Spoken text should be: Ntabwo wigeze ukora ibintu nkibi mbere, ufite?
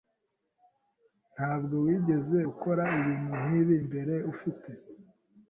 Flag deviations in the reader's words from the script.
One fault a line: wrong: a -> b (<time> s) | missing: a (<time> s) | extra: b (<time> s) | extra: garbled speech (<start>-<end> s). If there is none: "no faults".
no faults